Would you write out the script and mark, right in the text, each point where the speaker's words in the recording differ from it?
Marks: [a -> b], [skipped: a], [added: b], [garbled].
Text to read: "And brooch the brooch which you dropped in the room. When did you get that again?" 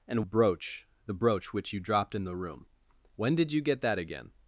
"And brooch the brooch which you dropped in the room. When did you get that again?"